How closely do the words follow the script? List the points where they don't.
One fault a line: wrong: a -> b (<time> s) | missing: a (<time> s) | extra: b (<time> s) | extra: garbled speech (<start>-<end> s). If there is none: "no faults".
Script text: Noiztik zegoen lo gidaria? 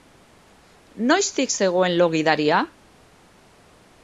no faults